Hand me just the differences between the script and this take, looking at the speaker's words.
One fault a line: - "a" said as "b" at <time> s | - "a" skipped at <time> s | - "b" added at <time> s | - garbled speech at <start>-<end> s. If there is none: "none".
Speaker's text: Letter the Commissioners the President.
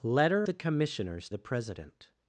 none